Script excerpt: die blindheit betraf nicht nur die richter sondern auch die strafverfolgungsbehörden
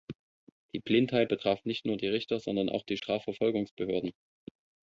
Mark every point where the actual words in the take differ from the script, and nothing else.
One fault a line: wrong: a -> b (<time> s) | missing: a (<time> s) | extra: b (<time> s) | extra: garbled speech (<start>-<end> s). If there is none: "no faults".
no faults